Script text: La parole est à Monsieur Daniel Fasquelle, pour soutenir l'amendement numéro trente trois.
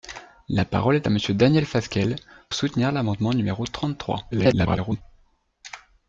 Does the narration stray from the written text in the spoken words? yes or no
yes